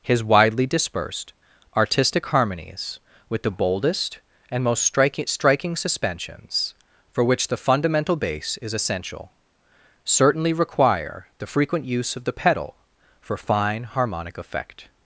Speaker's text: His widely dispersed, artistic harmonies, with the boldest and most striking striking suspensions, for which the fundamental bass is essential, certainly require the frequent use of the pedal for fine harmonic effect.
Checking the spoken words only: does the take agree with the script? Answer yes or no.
yes